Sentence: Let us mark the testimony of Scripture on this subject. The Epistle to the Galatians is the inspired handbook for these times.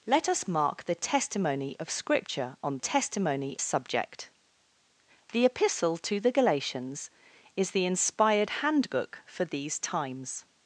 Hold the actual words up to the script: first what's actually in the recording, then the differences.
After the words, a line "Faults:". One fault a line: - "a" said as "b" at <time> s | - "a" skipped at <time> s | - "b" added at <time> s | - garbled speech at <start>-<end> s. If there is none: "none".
Let us mark the testimony of Scripture on testimony subject. The Epistle to the Galatians is the inspired handbook for these times.
Faults:
- "this" said as "testimony" at 2.8 s